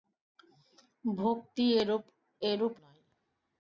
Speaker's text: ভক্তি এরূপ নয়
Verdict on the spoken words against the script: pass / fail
pass